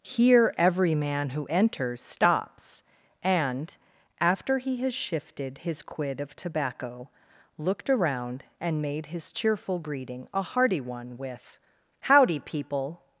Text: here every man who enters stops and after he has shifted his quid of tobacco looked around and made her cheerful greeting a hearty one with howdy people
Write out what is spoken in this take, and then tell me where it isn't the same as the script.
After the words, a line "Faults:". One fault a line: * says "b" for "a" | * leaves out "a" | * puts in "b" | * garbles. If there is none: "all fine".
here every man who enters stops and after he has shifted his quid of tobacco looked around and made his cheerful greeting a hearty one with howdy people
Faults:
* says "his" for "her"